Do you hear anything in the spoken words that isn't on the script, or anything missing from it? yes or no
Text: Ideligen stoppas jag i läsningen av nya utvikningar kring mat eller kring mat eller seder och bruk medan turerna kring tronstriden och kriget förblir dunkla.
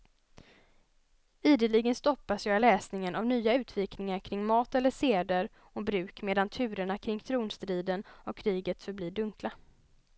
yes